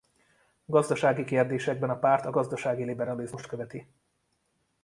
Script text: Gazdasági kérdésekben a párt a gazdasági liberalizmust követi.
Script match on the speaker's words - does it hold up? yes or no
yes